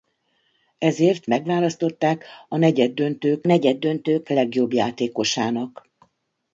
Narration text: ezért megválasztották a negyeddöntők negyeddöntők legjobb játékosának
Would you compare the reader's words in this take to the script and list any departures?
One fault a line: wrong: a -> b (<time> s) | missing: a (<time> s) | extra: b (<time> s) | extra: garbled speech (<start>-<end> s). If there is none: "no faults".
no faults